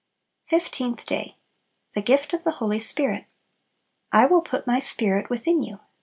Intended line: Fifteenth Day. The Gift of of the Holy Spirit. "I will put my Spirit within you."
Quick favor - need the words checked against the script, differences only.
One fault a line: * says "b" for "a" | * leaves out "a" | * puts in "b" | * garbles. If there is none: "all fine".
* leaves out "of"